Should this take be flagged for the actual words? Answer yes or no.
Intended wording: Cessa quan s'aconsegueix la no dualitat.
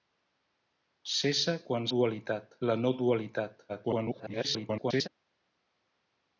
yes